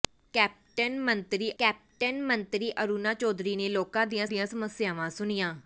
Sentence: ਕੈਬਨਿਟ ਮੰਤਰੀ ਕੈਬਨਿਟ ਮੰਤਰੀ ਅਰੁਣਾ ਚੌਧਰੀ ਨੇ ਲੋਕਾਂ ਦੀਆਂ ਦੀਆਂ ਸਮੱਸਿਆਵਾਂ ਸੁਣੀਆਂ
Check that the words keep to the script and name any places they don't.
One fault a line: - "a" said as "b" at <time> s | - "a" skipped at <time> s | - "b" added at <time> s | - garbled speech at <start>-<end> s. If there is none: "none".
none